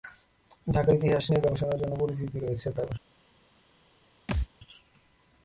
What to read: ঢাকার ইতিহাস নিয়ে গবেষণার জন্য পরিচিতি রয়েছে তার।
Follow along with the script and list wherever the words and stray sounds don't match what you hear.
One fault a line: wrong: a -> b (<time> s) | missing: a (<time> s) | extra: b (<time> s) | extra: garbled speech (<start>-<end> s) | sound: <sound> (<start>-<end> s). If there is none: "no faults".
sound: thud (4.3-4.5 s)